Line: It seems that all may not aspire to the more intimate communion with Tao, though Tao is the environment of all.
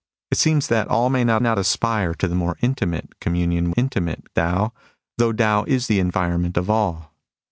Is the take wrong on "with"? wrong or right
wrong